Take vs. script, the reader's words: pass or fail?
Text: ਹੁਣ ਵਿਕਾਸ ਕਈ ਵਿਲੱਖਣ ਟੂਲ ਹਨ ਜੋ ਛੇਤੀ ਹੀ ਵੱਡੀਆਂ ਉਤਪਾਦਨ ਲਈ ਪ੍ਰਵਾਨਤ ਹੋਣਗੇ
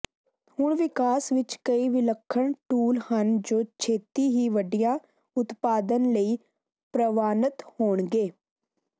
fail